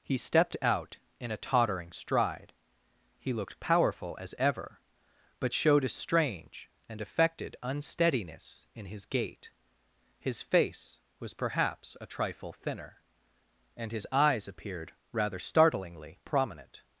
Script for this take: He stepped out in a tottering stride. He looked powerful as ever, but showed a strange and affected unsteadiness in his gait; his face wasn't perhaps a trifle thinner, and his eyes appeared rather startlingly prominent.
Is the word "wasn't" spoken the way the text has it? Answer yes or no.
no